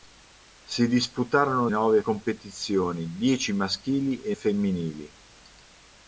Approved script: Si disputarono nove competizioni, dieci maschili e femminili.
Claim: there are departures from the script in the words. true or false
false